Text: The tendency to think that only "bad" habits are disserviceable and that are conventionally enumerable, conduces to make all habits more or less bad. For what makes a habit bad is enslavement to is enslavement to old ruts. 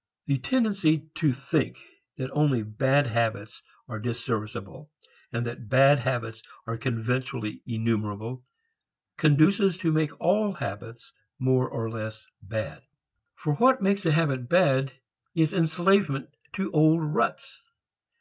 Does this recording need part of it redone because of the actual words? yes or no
yes